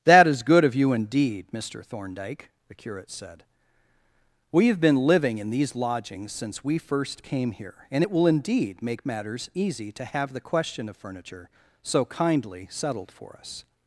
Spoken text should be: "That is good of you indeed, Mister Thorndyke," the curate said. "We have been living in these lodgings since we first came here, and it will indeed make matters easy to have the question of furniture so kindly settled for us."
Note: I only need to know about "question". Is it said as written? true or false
true